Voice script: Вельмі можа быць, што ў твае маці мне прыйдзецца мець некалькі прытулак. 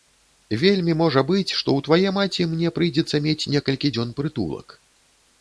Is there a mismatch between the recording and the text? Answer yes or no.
yes